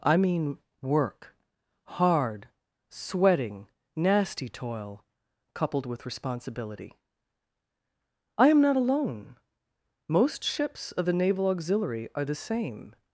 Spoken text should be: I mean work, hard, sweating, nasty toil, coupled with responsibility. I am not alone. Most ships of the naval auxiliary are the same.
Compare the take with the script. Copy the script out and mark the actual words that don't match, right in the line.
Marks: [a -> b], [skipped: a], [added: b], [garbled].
I mean work, hard, sweating, nasty toil, coupled with responsibility. I am not alone. Most ships of the naval auxiliary are the same.